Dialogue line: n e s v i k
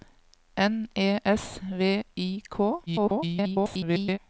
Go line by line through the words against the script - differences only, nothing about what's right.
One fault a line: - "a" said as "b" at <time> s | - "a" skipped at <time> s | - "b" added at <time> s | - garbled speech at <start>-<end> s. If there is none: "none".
- garbled speech at 2.9-4.2 s